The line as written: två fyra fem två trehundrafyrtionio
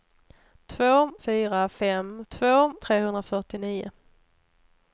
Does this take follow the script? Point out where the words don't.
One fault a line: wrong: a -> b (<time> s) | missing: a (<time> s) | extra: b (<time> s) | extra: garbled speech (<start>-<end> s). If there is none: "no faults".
no faults